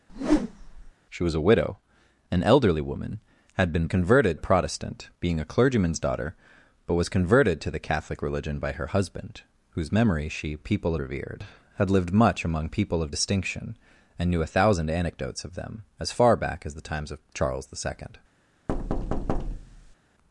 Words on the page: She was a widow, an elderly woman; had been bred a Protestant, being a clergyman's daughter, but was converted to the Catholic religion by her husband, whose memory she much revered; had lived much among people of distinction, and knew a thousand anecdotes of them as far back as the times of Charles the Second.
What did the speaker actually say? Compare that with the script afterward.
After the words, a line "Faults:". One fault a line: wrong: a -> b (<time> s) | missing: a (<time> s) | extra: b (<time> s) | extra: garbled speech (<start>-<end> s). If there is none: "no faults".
She was a widow, an elderly woman; had been converted a Protestant, being a clergyman's daughter, but was converted to the Catholic religion by her husband, whose memory she people revered; had lived much among people of distinction, and knew a thousand anecdotes of them as far back as the times of Charles the Second.
Faults:
wrong: bred -> converted (3.9 s)
wrong: much -> people (10.6 s)